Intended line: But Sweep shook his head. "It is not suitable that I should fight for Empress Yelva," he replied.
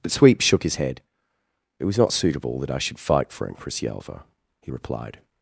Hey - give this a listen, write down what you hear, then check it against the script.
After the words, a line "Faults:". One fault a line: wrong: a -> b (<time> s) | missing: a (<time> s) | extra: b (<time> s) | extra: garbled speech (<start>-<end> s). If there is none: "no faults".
But Sweep shook his head. "It was not suitable that I should fight for Empress Yelva," he replied.
Faults:
wrong: is -> was (1.8 s)